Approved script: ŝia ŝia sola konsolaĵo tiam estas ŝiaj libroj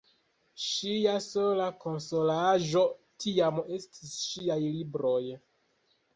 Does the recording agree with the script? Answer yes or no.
no